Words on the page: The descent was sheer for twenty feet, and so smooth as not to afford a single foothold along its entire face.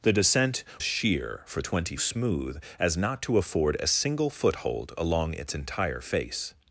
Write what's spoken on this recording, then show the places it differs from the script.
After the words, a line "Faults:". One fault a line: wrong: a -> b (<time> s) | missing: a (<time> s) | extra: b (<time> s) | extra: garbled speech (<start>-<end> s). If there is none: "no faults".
The descent sheer for twenty smooth as not to afford a single foothold along its entire face.
Faults:
missing: was (0.6 s)
missing: feet and so (1.9 s)